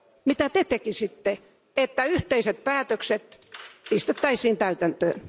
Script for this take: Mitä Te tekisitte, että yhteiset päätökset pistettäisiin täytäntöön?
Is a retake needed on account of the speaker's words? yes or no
no